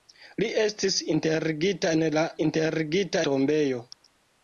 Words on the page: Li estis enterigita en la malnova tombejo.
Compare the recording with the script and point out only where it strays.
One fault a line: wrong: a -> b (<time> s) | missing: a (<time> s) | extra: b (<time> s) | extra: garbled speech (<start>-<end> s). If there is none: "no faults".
wrong: malnova -> enterigita (2.5 s)